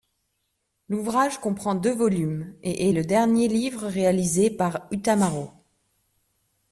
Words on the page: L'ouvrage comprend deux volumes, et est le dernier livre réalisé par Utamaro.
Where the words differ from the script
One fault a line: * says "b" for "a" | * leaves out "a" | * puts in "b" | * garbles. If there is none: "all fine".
all fine